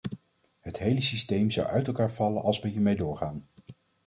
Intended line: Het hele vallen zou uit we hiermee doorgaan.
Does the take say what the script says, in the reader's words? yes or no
no